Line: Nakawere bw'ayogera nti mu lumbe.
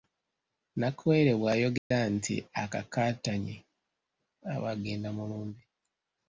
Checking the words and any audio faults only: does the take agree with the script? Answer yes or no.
no